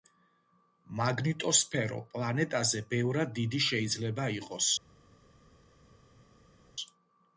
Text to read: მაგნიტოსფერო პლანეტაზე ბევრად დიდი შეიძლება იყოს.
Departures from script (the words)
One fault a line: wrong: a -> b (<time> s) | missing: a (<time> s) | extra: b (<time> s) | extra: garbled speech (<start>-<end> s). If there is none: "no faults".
no faults